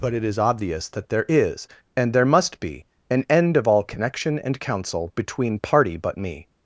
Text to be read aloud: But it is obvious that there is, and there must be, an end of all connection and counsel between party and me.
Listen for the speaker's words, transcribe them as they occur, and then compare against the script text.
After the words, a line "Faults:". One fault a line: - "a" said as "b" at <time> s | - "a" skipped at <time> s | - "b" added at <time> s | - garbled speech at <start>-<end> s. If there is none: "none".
But it is obvious that there is, and there must be, an end of all connection and counsel between party but me.
Faults:
- "and" said as "but" at 6.0 s